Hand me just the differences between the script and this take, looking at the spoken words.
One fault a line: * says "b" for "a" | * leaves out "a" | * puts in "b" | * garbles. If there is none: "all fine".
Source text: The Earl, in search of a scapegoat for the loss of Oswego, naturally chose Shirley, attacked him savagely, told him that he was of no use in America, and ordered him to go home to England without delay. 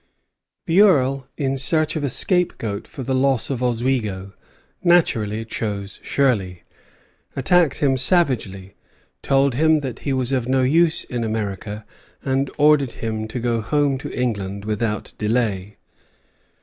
all fine